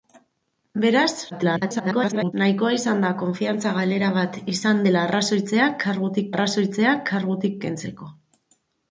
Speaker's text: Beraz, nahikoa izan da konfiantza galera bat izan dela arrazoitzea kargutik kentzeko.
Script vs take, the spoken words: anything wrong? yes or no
yes